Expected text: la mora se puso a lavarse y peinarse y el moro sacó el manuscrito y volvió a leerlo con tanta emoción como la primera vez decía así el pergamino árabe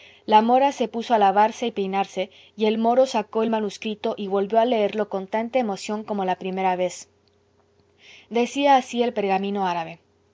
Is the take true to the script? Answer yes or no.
yes